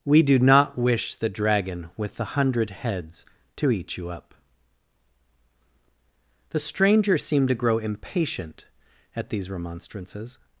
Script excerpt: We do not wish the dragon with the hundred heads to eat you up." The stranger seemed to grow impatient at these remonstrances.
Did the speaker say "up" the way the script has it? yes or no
yes